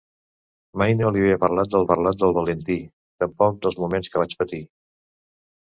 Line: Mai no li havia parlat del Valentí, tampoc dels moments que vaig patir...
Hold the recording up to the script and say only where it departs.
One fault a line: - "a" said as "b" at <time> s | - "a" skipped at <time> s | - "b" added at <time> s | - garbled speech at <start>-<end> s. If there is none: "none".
- "parlat del" added at 1.9 s